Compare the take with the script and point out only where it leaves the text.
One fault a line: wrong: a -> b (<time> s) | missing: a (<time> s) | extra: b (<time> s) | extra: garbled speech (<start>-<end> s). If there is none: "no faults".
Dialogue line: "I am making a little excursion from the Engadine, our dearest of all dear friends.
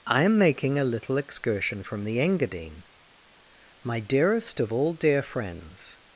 wrong: our -> my (3.8 s)